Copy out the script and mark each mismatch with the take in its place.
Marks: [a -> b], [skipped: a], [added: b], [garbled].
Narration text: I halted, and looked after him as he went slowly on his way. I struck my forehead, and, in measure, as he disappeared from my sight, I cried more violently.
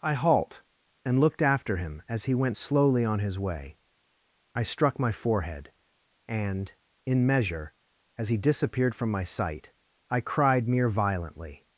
I [halted, -> halt] and looked after him as he went slowly on his way. I struck my forehead, and, in measure, as he disappeared from my sight, I cried [more -> mere] violently.